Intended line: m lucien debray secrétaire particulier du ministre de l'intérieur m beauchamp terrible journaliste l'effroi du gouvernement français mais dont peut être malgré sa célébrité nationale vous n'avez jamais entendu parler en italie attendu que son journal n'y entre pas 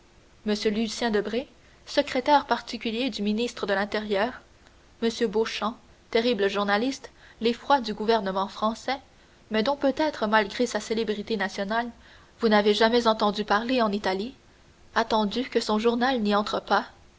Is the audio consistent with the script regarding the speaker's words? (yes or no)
yes